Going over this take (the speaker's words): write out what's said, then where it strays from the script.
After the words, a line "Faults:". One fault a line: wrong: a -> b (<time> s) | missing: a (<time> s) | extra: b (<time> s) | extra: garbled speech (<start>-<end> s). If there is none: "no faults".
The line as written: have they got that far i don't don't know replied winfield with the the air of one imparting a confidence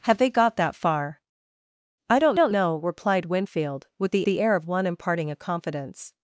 have they got that far i don't don't know replied winfield with the the air of one imparting a confidence
Faults:
no faults